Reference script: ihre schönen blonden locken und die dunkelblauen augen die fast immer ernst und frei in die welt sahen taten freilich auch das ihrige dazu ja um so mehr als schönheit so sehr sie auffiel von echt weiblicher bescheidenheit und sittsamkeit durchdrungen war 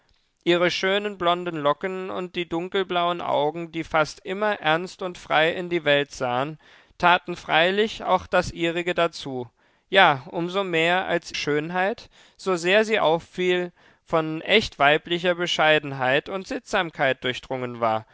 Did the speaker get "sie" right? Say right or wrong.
right